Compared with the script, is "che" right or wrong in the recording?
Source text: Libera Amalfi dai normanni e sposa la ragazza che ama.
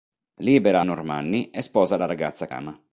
wrong